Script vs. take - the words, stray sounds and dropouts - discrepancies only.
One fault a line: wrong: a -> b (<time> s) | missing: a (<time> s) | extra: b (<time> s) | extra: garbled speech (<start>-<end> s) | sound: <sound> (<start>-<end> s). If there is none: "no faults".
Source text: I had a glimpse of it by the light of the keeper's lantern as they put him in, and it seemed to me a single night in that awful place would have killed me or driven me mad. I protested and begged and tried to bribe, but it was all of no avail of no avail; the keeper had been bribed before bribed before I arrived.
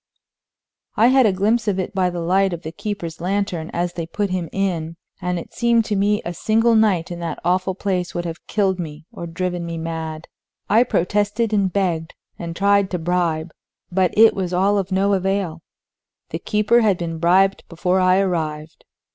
missing: of no avail (15.6 s)
missing: bribed before (18.0 s)